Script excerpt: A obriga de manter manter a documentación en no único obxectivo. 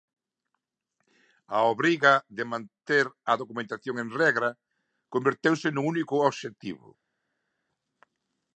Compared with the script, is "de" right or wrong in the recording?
right